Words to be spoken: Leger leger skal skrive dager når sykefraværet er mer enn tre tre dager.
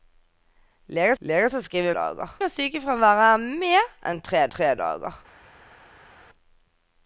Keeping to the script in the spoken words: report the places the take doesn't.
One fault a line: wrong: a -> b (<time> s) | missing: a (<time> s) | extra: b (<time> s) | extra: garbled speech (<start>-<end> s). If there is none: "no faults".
no faults